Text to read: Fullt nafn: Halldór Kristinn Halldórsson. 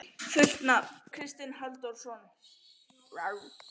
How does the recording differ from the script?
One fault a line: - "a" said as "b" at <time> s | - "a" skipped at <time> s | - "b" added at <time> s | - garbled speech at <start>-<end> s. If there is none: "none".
- "Halldór" skipped at 0.9 s